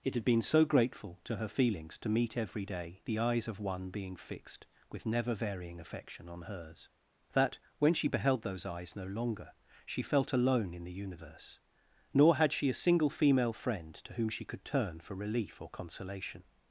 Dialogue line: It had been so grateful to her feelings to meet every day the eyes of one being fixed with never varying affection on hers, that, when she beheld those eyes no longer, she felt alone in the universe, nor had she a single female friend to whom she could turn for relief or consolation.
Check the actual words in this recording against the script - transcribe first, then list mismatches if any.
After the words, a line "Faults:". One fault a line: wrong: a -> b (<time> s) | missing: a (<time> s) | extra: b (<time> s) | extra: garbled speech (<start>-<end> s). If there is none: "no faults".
It had been so grateful to her feelings to meet every day the eyes of one being fixed with never varying affection on hers, that, when she beheld those eyes no longer, she felt alone in the universe, nor had she a single female friend to whom she could turn for relief or consolation.
Faults:
no faults